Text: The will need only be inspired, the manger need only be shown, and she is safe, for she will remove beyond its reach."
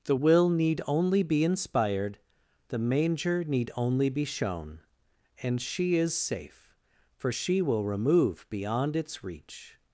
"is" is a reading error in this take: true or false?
false